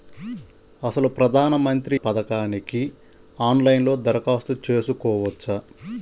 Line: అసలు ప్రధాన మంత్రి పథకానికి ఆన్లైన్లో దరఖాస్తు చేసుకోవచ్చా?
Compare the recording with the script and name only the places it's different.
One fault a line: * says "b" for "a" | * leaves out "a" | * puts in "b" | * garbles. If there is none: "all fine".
all fine